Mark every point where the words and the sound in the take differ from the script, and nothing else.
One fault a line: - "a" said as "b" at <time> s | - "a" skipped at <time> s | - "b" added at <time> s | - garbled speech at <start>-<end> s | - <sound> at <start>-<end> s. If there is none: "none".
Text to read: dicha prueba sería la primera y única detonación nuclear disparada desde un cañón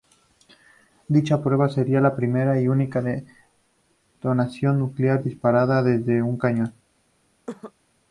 - cough at 7.5-7.7 s